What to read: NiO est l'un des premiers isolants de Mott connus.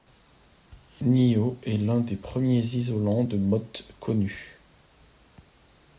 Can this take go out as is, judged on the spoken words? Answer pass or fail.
pass